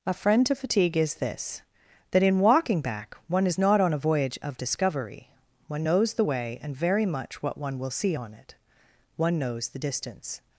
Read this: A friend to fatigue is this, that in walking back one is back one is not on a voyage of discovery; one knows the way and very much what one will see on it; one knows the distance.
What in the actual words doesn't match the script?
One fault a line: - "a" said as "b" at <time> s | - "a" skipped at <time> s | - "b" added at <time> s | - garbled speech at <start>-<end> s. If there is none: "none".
- "back one is" skipped at 3.6 s